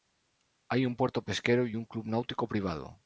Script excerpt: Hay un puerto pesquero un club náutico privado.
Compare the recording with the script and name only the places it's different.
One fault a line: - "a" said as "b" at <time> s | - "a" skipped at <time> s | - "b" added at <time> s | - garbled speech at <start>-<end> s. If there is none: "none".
- "y" added at 1.7 s